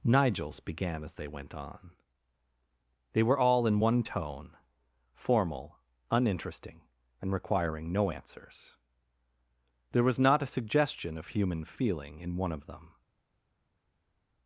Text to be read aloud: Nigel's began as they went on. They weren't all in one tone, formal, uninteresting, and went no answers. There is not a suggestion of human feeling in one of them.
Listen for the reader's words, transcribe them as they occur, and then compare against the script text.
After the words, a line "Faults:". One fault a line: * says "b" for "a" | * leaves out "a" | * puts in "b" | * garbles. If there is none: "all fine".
Nigel's began as they went on. They were all in one tone, formal, uninteresting, and requiring no answers. There was not a suggestion of human feeling in one of them.
Faults:
* says "were" for "weren't"
* says "requiring" for "went"
* says "was" for "is"